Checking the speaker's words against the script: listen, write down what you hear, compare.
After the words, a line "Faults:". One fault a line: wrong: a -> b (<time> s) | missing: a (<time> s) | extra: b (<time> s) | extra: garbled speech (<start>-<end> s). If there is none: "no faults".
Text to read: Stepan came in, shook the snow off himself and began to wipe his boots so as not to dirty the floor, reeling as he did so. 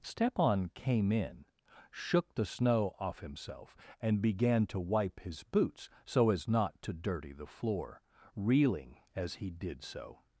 Stepan came in, shook the snow off himself and began to wipe his boots so as not to dirty the floor, reeling as he did so.
Faults:
no faults